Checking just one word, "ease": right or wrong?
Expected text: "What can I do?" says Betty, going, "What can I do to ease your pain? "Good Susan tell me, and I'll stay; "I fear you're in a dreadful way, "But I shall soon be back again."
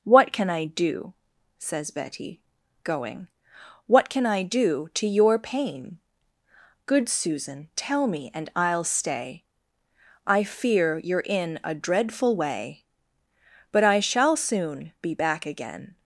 wrong